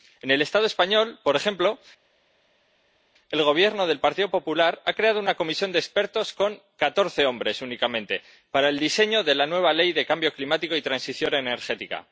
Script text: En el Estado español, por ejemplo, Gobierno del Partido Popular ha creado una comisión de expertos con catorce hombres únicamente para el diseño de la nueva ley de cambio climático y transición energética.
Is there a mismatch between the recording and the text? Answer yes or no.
yes